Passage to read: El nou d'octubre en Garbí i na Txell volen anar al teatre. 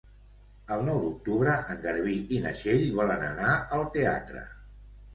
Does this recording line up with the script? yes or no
yes